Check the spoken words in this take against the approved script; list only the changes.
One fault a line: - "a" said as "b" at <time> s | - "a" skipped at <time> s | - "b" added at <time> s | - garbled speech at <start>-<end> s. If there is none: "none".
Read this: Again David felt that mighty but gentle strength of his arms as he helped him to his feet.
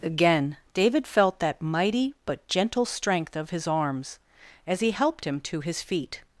none